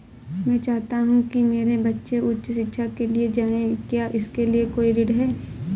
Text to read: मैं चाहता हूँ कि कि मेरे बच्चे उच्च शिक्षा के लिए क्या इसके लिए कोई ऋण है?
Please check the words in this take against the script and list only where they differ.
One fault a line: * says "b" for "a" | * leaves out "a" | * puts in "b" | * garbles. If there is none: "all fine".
* leaves out "कि"
* puts in "जाएं"